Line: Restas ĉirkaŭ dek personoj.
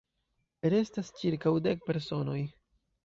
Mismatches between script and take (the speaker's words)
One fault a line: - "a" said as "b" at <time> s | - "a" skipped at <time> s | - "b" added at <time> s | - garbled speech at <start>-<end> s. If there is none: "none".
none